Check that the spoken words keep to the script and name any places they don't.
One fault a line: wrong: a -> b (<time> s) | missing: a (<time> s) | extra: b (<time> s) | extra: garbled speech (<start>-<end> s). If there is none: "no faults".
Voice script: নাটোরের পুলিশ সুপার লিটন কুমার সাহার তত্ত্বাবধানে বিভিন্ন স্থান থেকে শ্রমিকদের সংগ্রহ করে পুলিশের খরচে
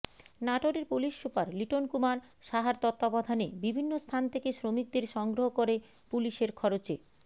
no faults